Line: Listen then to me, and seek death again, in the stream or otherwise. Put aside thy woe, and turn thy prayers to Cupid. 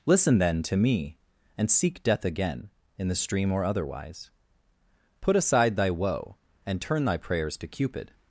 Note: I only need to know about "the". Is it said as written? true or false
true